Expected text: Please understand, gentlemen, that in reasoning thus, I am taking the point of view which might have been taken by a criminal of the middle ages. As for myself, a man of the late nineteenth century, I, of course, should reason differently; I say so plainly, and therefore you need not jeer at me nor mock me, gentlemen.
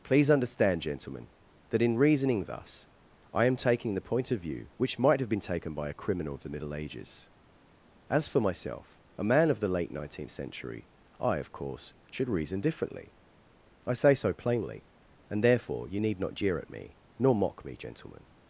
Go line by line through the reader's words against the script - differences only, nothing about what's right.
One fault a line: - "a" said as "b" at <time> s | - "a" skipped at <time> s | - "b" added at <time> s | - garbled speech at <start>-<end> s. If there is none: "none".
none